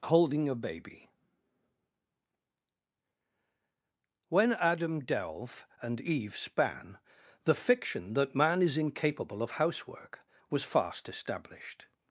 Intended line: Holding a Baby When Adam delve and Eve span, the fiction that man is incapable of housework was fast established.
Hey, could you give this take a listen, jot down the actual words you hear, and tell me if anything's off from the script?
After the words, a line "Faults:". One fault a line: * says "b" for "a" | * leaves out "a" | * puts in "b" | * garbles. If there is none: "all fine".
Holding a Baby When Adam delve and Eve span, the fiction that man is incapable of housework was fast established.
Faults:
all fine